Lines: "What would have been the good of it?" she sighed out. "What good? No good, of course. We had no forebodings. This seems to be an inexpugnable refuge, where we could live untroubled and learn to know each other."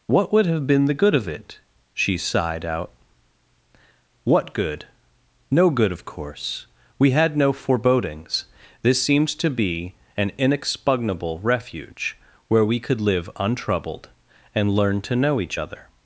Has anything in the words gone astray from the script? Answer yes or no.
no